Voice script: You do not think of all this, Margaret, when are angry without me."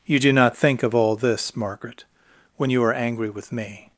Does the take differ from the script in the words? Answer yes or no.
yes